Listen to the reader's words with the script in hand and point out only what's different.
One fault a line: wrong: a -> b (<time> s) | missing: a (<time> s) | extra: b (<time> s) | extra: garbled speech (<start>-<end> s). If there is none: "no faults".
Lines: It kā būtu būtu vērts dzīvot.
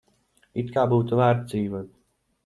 missing: būtu (1.2 s)